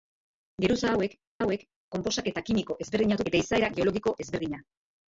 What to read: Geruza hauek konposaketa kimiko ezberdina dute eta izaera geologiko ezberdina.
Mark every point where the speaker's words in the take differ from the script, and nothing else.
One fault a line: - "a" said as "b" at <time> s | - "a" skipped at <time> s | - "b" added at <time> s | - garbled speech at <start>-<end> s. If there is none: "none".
- "hauek" added at 1.4 s
- "dute" skipped at 3.2 s